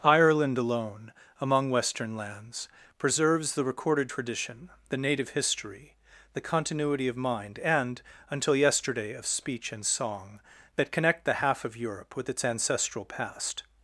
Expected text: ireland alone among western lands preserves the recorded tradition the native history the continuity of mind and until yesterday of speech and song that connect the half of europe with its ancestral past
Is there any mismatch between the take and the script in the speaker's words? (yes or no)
no